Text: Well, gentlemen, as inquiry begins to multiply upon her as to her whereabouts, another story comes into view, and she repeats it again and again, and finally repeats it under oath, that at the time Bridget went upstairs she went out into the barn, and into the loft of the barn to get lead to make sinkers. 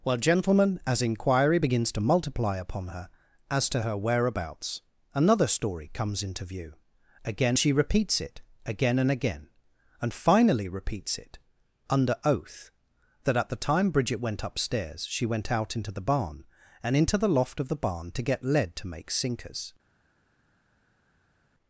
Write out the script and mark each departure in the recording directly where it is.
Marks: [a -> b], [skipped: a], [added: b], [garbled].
Well, gentlemen, as inquiry begins to multiply upon her as to her whereabouts, another story comes into view, [and -> again] she repeats it again and again, and finally repeats it under oath, that at the time Bridget went upstairs she went out into the barn, and into the loft of the barn to get lead to make sinkers.